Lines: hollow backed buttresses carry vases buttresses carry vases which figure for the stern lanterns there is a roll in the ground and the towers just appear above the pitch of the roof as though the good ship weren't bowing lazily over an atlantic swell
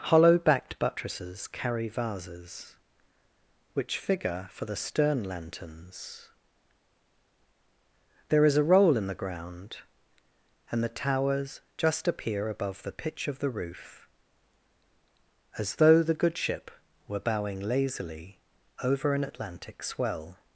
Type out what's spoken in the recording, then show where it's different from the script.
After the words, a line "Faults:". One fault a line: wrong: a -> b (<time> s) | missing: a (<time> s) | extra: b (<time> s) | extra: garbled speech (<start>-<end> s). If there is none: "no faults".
hollow backed buttresses carry vases which figure for the stern lanterns there is a roll in the ground and the towers just appear above the pitch of the roof as though the good ship were bowing lazily over an atlantic swell
Faults:
missing: buttresses carry vases (2.8 s)
wrong: weren't -> were (17.1 s)